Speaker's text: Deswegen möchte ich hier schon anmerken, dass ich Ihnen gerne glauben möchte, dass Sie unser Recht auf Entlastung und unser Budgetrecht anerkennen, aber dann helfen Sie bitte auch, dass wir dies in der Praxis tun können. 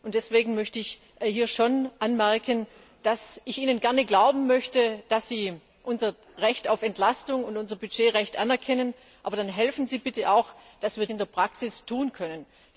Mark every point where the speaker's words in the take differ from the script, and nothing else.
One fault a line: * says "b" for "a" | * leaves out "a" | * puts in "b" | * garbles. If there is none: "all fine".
* leaves out "dies"